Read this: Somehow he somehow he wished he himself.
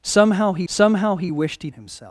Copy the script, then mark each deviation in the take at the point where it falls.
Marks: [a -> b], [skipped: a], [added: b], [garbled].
Somehow he somehow he wished he himself.